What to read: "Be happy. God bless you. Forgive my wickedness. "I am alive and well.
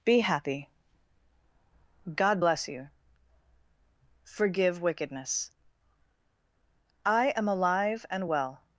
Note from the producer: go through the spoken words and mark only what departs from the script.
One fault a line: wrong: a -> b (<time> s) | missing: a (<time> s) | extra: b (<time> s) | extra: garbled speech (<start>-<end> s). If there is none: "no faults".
missing: my (4.8 s)